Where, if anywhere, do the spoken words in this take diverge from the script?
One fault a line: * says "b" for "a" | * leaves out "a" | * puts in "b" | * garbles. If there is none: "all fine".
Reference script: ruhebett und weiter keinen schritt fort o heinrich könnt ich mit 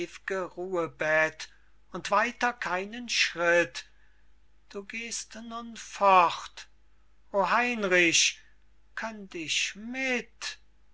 * puts in "du gehst nun"